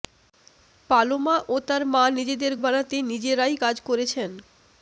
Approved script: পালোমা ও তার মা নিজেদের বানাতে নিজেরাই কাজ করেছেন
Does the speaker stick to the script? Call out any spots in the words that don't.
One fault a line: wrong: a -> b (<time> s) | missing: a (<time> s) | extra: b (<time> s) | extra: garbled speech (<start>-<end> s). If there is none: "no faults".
no faults